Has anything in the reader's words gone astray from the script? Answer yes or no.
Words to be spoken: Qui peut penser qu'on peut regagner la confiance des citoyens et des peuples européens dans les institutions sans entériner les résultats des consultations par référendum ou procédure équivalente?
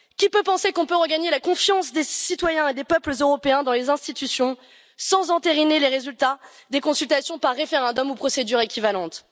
no